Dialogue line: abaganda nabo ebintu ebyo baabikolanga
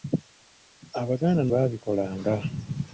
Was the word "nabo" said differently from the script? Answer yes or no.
yes